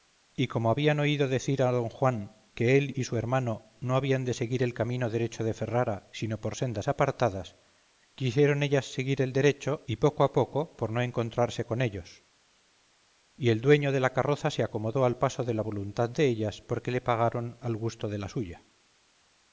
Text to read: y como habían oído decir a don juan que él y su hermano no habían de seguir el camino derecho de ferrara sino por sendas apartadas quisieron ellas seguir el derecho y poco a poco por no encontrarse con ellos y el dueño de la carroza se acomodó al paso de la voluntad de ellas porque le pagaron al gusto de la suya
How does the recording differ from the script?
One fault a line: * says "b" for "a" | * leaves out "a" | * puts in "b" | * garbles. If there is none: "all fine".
all fine